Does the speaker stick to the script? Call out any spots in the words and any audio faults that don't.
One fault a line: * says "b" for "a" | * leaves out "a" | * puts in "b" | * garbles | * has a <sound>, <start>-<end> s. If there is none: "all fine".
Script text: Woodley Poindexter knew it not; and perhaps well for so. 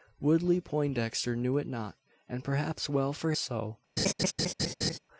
* has a laugh, 4.0-5.0 s